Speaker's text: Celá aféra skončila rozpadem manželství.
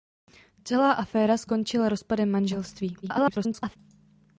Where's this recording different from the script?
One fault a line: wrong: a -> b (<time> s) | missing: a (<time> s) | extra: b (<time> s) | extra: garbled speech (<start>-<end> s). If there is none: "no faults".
extra: garbled speech (3.0-3.8 s)